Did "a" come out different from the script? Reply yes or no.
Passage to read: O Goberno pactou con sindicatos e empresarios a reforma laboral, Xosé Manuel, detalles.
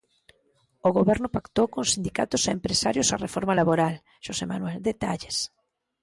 no